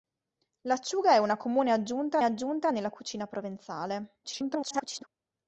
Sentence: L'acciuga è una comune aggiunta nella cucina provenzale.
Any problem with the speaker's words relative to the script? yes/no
yes